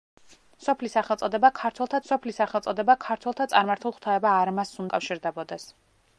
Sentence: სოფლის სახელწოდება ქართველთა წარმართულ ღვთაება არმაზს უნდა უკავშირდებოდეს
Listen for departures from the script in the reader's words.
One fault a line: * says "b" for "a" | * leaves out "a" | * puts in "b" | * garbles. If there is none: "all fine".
* puts in "სოფლის სახელწოდება ქართველთა"
* leaves out "უნდა"